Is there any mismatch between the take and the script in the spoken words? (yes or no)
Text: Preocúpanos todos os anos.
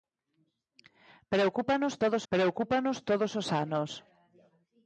yes